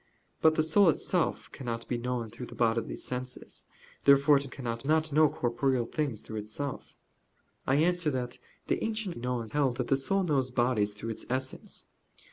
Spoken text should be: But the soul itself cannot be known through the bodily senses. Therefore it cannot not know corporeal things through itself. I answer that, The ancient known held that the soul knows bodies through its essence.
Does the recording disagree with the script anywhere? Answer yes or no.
no